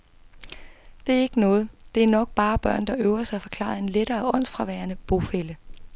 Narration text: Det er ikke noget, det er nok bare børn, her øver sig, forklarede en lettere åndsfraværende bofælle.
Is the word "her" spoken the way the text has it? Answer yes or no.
no